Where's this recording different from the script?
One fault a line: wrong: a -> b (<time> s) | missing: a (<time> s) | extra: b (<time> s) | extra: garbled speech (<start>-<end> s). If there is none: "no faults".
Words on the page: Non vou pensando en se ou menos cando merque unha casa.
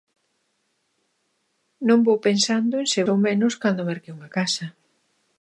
no faults